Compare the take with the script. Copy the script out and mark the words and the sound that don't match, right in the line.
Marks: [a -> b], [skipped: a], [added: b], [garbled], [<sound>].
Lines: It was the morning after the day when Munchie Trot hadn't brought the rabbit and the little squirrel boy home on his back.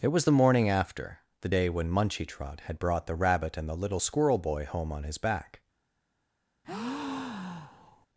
It was the morning after the day when Munchie Trot [hadn't -> had] brought the rabbit and the little squirrel boy home on his back. [breath]